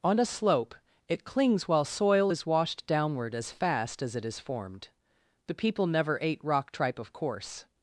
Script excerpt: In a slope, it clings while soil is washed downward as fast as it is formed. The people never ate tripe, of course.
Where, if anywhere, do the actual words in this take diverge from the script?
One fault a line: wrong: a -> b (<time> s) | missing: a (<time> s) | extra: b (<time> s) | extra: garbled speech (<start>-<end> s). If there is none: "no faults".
wrong: In -> On (0.0 s)
extra: rock (6.4 s)